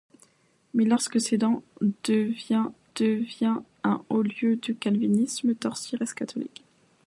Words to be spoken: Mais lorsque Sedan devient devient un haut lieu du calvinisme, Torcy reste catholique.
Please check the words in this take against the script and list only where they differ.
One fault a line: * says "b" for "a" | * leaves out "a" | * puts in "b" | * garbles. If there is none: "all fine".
all fine